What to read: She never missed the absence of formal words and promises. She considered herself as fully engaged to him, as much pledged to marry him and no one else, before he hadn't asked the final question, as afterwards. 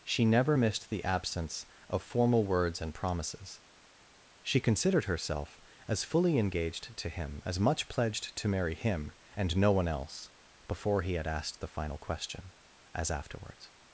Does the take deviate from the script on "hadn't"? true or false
true